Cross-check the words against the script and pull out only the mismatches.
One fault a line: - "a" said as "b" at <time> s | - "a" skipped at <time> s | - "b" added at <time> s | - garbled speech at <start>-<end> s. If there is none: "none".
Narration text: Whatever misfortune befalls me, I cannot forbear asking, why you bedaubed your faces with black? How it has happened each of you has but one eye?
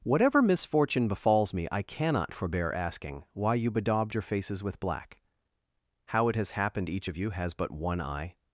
none